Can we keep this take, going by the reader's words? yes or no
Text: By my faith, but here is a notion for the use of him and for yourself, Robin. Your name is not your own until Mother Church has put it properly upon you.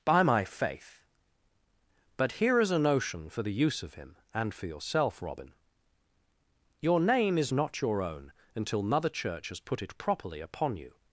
yes